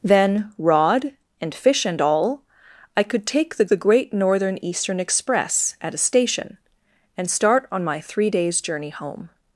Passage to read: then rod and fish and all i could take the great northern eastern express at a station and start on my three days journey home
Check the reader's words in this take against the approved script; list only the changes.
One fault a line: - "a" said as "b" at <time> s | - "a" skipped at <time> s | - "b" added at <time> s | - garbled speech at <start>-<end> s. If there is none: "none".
- "the" added at 3.7 s